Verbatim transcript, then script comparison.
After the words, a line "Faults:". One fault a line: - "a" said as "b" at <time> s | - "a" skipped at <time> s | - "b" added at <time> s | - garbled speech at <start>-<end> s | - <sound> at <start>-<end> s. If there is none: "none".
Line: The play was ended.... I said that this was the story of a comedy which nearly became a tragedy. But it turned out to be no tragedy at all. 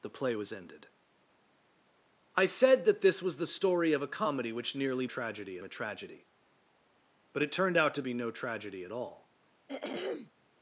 The play was ended.... I said that this was the story of a comedy which nearly tragedy a tragedy. But it turned out to be no tragedy at all.
Faults:
- "became" said as "tragedy" at 5.0 s
- throat clearing at 9.7-10.3 s